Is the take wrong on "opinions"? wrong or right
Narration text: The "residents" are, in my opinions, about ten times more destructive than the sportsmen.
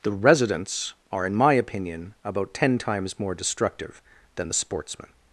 wrong